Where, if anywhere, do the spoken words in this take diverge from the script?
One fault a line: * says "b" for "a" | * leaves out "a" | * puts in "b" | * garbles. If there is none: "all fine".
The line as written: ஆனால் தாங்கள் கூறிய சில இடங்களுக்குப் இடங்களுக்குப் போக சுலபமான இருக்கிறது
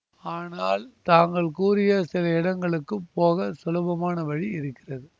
* leaves out "இடங்களுக்குப்"
* puts in "வழி"